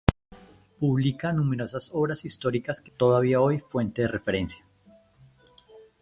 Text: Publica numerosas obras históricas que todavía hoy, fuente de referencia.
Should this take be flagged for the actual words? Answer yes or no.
no